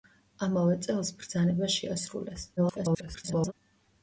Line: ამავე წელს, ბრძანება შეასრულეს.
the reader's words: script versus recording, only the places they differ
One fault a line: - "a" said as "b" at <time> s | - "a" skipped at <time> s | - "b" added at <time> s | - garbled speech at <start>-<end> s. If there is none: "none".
- garbled speech at 2.6-3.5 s